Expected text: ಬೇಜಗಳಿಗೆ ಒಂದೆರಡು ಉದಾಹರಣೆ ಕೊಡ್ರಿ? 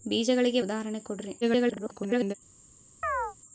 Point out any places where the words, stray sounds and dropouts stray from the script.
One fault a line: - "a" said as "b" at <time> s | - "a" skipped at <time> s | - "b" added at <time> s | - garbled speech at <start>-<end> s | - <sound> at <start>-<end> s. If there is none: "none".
- "ಒಂದೆರಡು" skipped at 0.6 s
- garbled speech at 1.4-2.3 s
- chirp at 3.0-3.4 s